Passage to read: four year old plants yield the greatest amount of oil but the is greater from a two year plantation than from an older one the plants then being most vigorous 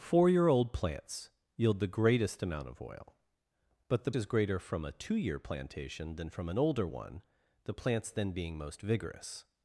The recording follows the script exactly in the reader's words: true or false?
true